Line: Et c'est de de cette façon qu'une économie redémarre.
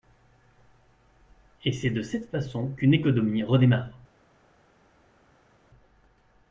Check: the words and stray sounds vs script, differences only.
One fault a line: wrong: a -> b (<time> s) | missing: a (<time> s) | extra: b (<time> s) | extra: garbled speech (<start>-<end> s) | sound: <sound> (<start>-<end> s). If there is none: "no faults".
missing: de (2.0 s)